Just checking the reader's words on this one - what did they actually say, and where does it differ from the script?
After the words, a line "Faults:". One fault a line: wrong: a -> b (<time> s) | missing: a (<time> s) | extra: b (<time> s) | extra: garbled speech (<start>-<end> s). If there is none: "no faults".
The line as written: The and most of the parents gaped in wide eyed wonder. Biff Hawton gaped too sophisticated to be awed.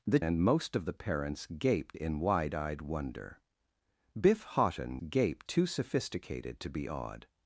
The and most of the parents gaped in wide eyed wonder. Biff Hawton gaped too sophisticated to be awed.
Faults:
no faults